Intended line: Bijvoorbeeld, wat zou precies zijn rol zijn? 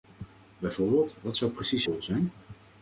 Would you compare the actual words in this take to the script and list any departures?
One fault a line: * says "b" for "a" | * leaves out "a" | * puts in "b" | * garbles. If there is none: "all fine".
* leaves out "zijn"